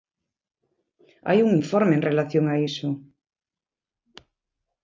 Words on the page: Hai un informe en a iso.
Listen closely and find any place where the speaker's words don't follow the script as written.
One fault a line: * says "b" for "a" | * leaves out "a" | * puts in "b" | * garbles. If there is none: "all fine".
* puts in "relación"